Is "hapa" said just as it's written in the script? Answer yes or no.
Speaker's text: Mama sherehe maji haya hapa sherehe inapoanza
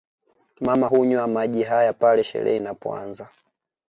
no